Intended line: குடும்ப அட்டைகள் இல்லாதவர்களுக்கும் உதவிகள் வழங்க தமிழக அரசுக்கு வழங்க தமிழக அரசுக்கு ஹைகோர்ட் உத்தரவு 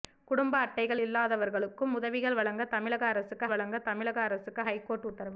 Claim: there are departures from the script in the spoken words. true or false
false